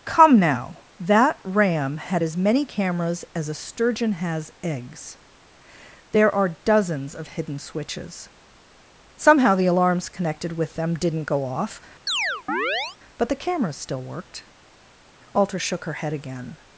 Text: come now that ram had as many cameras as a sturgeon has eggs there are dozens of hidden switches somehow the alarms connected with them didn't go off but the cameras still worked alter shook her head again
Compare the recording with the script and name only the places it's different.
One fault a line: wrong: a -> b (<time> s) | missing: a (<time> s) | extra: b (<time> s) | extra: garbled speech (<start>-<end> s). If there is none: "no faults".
no faults